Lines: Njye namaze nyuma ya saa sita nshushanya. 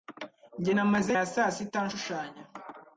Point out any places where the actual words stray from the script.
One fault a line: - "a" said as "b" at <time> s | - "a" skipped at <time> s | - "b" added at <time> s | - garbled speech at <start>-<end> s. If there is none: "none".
- "nyuma" skipped at 1.1 s